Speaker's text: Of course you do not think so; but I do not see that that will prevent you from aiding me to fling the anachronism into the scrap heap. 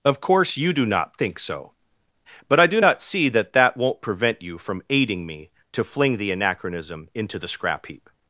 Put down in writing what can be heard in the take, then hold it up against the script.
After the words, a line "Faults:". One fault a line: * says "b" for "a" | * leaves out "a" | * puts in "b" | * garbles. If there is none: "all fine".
Of course you do not think so; but I do not see that that won't prevent you from aiding me to fling the anachronism into the scrap heap.
Faults:
* says "won't" for "will"